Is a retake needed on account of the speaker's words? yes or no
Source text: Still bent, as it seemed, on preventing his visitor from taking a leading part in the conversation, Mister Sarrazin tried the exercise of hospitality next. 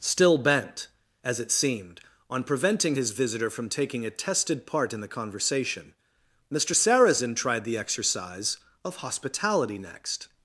yes